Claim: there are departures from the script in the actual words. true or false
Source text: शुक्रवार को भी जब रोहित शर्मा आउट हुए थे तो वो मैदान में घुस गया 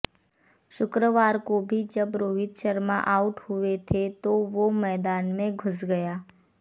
false